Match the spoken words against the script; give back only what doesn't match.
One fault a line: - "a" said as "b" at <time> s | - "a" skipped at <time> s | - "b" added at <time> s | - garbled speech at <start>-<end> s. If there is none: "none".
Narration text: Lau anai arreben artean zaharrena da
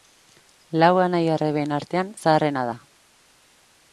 none